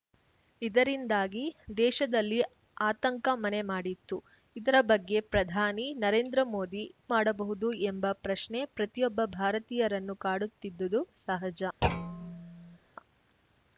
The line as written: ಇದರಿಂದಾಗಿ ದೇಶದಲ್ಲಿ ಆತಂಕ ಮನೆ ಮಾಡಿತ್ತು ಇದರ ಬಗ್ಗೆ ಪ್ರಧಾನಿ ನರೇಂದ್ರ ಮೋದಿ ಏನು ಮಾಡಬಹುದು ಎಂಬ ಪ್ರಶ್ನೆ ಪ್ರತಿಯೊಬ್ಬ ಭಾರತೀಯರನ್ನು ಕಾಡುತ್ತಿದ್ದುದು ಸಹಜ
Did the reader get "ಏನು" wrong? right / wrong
wrong